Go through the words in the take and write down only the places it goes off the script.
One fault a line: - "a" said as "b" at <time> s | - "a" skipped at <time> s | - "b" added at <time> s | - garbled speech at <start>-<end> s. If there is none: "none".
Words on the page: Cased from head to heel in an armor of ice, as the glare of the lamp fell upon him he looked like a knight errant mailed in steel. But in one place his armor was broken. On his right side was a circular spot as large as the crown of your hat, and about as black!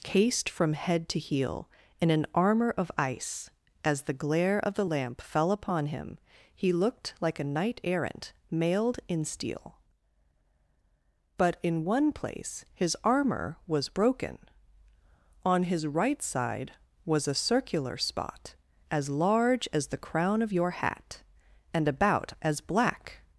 none